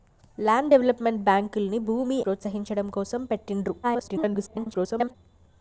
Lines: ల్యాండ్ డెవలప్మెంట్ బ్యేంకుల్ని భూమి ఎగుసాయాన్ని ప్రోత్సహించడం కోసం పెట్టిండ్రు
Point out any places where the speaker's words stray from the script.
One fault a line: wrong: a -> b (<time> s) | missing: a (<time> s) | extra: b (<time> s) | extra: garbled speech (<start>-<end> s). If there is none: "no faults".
missing: ఎగుసాయాన్ని (2.2 s)
extra: garbled speech (3.8-5.2 s)